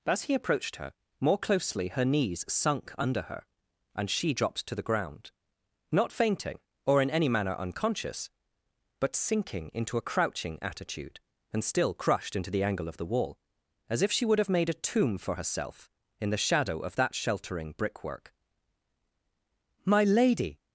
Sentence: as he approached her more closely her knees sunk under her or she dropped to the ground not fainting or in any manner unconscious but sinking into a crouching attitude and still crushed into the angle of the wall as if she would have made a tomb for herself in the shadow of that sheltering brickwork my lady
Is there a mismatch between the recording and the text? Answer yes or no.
yes